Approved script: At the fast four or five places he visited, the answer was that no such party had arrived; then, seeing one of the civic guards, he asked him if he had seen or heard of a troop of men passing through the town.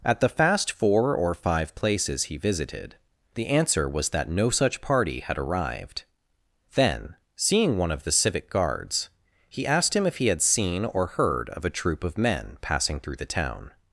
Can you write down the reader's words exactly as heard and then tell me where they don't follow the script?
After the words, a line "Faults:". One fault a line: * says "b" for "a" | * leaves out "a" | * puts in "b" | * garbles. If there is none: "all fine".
At the fast four or five places he visited, the answer was that no such party had arrived; then, seeing one of the civic guards, he asked him if he had seen or heard of a troop of men passing through the town.
Faults:
all fine